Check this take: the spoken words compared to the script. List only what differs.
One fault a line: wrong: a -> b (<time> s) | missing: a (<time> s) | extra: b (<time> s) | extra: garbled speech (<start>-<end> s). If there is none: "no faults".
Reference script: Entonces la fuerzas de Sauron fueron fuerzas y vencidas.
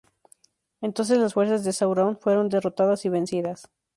wrong: la -> las (1.2 s)
wrong: fuerzas -> derrotadas (2.5 s)